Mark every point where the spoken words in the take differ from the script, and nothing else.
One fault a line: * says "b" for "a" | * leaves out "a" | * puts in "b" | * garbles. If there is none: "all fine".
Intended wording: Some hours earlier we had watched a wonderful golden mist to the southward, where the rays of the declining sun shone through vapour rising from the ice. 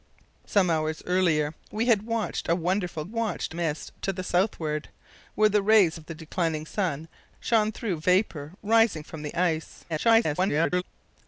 * says "watched" for "golden"
* garbles